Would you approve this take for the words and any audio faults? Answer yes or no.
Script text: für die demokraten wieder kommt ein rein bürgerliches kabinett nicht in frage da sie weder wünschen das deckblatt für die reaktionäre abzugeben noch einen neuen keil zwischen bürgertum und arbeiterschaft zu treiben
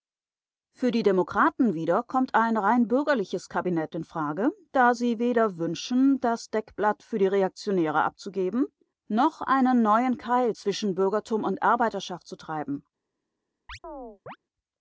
no